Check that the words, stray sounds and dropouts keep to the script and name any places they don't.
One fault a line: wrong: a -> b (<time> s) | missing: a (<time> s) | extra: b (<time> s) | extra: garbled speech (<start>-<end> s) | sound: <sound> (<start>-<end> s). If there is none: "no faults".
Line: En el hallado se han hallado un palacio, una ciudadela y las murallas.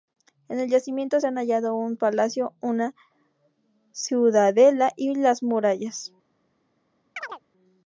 wrong: hallado -> yacimiento (0.7 s)
sound: chirp (7.2-7.4 s)